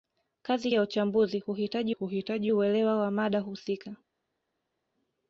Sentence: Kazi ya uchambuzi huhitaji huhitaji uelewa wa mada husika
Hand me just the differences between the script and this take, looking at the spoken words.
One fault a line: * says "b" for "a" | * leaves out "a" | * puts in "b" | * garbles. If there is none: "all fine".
all fine